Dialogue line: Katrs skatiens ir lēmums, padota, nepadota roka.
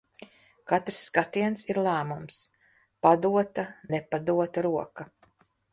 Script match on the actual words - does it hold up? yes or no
yes